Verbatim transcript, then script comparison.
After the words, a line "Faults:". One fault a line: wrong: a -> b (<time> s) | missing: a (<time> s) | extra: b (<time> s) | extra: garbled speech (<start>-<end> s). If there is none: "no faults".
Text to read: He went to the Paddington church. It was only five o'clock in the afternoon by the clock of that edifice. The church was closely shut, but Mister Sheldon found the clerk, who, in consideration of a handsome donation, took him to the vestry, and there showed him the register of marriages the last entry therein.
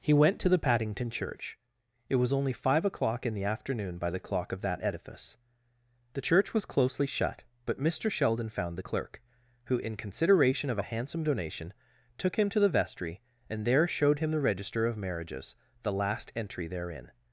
He went to the Paddington church. It was only five o'clock in the afternoon by the clock of that edifice. The church was closely shut, but Mister Sheldon found the clerk, who, in consideration of a handsome donation, took him to the vestry, and there showed him the register of marriages the last entry therein.
Faults:
no faults